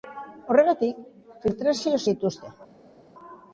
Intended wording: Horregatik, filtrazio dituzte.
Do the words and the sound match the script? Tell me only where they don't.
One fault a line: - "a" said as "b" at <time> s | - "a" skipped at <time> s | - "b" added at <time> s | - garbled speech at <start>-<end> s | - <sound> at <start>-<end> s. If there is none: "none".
none